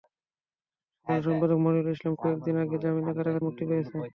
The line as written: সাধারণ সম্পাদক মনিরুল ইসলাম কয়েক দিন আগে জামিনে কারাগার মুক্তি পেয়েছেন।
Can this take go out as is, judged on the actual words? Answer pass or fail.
pass